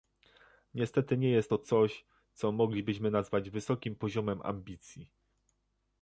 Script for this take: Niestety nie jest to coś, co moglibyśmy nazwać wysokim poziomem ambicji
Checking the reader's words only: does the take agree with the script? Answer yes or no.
yes